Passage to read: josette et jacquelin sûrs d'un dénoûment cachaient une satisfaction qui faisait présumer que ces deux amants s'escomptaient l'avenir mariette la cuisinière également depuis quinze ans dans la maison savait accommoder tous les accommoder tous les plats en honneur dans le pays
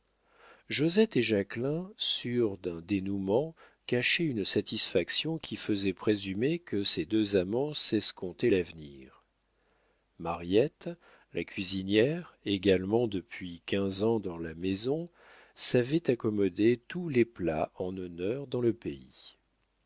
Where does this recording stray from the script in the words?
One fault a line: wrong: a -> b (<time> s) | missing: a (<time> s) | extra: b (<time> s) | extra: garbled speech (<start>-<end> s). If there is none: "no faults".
missing: accommoder tous les (17.2 s)